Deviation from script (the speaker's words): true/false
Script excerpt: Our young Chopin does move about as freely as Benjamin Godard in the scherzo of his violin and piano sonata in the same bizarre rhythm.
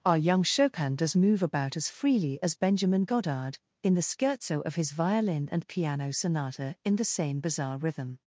false